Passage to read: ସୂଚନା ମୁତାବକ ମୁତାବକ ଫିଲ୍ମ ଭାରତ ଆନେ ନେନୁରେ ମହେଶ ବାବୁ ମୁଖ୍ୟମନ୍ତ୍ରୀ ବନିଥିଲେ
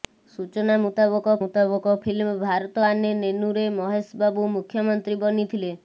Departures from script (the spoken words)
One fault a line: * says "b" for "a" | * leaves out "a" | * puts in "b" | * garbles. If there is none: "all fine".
all fine